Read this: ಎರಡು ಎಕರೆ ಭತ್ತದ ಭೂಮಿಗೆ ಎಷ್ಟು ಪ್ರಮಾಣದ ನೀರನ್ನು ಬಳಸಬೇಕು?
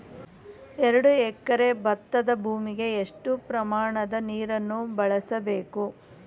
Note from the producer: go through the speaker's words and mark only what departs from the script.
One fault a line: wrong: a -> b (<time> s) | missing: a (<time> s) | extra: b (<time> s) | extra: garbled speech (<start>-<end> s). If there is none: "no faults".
no faults